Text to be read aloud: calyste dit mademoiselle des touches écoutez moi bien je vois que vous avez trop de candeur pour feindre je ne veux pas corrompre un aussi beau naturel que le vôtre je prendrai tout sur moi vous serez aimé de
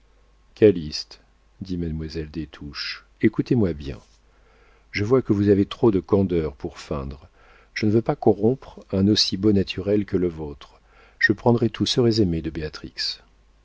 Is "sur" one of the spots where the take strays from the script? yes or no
yes